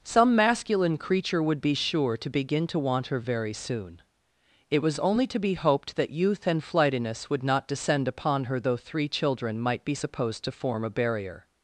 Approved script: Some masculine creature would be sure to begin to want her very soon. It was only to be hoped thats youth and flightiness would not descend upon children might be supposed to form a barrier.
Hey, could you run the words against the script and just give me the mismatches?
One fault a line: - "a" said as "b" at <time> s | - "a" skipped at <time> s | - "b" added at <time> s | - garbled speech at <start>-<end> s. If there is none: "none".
- "thats" said as "that" at 6.0 s
- "her though three" added at 8.4 s